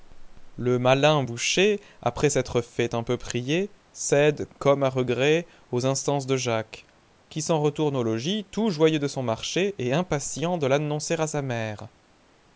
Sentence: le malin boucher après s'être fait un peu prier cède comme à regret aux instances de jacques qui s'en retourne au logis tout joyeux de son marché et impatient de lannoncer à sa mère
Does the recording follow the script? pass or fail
pass